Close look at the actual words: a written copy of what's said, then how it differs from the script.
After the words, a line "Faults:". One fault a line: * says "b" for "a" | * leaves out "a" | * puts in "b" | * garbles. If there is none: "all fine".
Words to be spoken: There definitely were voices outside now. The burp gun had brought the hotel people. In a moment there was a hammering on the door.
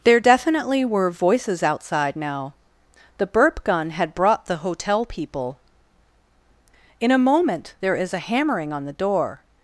There definitely were voices outside now. The burp gun had brought the hotel people. In a moment there is a hammering on the door.
Faults:
* says "is" for "was"